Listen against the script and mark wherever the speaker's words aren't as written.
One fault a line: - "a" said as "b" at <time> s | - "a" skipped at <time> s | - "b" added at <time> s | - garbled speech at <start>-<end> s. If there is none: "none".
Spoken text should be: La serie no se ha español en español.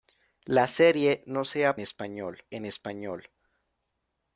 none